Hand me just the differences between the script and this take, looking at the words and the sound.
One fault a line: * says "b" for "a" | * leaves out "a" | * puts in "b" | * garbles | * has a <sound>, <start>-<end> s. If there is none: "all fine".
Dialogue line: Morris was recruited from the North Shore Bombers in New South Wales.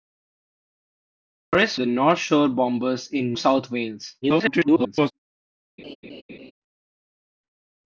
* leaves out "was recruited from"
* leaves out "New"
* garbles
* has a laugh, 5.8-6.5 s